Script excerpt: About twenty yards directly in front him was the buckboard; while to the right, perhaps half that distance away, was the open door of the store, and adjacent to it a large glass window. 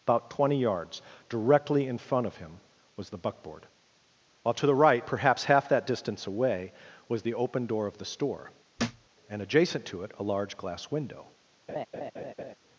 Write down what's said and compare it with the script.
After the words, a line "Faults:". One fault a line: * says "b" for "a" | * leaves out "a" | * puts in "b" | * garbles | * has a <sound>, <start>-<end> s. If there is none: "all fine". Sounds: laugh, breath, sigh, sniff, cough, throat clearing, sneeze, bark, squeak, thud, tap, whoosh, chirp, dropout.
About twenty yards directly in front of him was the buckboard; while to the right, perhaps half that distance away, was the open door of the store, and adjacent to it a large glass window.
Faults:
* puts in "of"
* has a thud, 8.8-9.1 s
* has a laugh, 11.7-12.5 s